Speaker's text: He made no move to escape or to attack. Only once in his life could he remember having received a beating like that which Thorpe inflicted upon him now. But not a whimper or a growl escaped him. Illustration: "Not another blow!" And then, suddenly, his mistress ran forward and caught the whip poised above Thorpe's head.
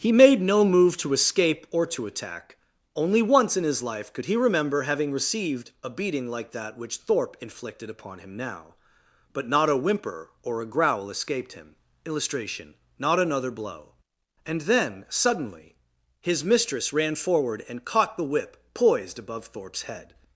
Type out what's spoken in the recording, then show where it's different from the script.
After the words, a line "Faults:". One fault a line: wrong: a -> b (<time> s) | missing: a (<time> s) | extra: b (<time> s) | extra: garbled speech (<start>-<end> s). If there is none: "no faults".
He made no move to escape or to attack. Only once in his life could he remember having received a beating like that which Thorpe inflicted upon him now. But not a whimper or a growl escaped him. Illustration: "Not another blow!" And then, suddenly, his mistress ran forward and caught the whip poised above Thorpe's head.
Faults:
no faults